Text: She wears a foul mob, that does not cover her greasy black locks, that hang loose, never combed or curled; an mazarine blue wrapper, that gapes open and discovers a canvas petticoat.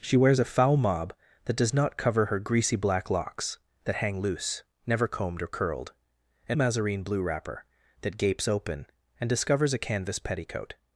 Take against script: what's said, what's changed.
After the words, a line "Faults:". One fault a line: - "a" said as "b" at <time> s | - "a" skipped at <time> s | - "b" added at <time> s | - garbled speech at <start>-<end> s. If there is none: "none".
She wears a foul mob, that does not cover her greasy black locks, that hang loose, never combed or curled; an mazarine blue wrapper, that gapes open and discovers a canvas petticoat.
Faults:
none